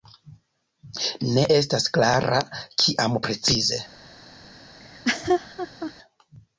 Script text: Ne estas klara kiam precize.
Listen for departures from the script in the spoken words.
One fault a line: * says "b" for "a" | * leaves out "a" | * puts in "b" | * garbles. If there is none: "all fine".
all fine